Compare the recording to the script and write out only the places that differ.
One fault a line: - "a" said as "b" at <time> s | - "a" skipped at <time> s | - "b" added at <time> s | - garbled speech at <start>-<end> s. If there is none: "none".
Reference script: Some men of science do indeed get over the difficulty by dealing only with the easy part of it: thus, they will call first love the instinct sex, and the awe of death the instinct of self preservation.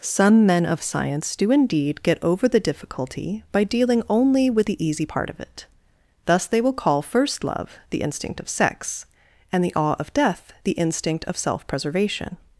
- "of" added at 8.4 s